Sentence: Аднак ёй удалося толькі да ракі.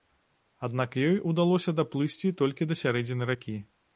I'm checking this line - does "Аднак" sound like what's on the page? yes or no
yes